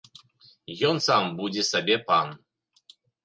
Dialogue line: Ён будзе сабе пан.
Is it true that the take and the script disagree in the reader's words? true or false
true